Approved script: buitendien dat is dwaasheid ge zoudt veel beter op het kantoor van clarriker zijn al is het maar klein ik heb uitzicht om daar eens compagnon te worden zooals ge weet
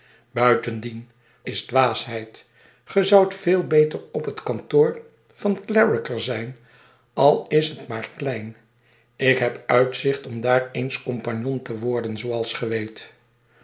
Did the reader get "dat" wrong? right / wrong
wrong